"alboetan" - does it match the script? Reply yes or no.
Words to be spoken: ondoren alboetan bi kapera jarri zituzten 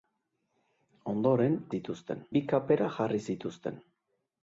no